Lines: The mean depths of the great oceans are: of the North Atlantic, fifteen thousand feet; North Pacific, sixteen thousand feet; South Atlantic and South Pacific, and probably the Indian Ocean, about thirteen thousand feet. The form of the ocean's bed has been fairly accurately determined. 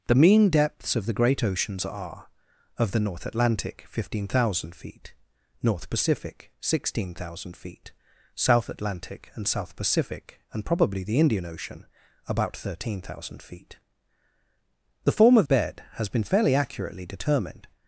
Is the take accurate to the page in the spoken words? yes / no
no